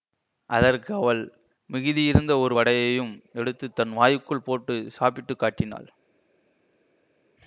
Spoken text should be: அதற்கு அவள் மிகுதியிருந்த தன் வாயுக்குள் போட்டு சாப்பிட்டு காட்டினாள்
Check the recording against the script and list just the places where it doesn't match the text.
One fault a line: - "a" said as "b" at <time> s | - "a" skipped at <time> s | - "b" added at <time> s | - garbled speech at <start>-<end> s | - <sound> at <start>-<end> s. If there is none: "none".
- "ஒரு வடையையும் எடுத்து" added at 2.4 s